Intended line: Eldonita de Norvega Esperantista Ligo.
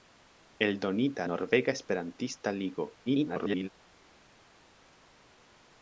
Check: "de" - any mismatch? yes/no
yes